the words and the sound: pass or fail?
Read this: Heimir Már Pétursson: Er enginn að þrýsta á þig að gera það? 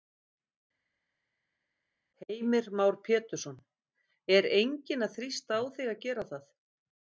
pass